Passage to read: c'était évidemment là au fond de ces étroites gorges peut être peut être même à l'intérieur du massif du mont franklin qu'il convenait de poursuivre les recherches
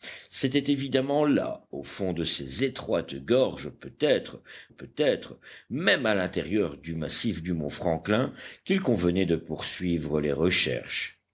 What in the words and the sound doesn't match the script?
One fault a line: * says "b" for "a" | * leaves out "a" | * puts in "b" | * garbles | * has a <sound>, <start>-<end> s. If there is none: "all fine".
all fine